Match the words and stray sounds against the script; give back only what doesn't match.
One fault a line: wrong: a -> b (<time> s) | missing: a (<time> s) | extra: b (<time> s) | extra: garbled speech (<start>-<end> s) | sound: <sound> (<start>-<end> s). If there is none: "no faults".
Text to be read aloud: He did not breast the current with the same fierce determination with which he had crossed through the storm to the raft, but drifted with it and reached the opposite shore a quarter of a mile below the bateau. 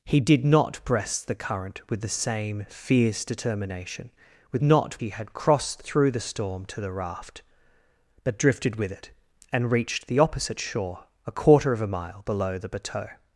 wrong: which -> not (4.6 s)